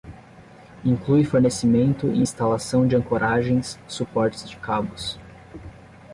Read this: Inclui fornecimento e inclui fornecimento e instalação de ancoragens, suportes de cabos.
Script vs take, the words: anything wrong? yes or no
yes